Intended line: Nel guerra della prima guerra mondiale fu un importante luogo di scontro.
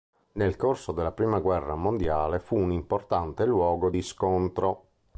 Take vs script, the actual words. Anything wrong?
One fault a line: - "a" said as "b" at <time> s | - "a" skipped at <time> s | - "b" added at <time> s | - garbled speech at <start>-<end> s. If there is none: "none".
- "guerra" said as "corso" at 0.6 s